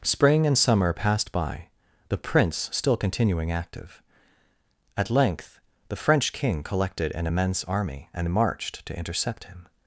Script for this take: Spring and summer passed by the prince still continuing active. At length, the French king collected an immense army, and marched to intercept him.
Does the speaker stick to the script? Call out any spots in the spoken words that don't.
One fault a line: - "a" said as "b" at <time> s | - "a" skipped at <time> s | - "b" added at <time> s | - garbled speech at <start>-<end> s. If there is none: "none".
none